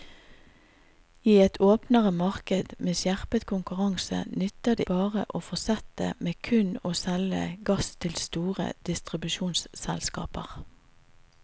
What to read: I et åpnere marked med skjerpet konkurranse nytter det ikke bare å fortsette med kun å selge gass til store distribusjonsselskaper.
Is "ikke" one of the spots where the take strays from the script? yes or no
yes